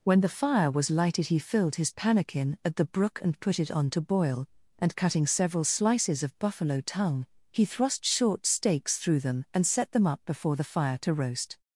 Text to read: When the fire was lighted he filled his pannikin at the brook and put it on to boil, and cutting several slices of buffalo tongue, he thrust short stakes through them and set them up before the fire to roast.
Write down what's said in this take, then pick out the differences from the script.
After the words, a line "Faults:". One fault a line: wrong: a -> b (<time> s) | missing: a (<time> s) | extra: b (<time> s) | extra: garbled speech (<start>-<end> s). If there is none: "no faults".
When the fire was lighted he filled his pannikin at the brook and put it on to boil, and cutting several slices of buffalo tongue, he thrust short stakes through them and set them up before the fire to roast.
Faults:
no faults